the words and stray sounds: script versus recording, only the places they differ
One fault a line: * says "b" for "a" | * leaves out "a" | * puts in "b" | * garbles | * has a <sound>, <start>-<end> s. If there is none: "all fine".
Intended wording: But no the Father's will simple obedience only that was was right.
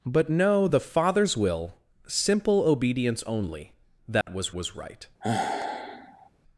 * has a dropout, 4.2-4.3 s
* has a sigh, 5.2-6.3 s